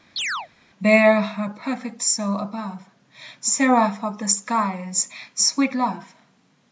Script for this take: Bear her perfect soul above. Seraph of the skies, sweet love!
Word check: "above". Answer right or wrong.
right